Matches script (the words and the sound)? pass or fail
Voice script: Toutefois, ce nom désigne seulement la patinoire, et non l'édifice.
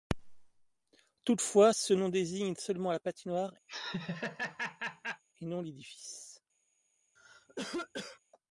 fail